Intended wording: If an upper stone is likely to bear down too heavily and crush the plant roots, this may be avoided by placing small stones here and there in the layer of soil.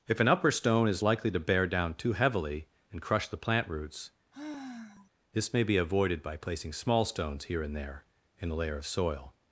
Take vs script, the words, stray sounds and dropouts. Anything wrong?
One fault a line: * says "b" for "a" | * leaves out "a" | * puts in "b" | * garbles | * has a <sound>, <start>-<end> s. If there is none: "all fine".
* has a sigh, 4.3-5.1 s
* says "a" for "the"